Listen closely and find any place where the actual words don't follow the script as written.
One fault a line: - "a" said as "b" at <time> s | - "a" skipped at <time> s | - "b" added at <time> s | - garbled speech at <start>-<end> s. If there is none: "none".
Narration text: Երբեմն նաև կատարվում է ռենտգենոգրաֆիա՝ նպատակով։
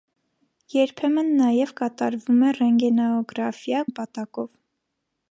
none